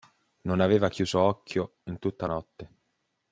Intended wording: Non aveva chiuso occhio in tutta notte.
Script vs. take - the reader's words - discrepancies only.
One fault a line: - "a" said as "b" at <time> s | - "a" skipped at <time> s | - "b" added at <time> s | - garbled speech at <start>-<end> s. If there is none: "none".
none